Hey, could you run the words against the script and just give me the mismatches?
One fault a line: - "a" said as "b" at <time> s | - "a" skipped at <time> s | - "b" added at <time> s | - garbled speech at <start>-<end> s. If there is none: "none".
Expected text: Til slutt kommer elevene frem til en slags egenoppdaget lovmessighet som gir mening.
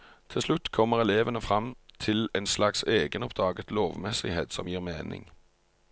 none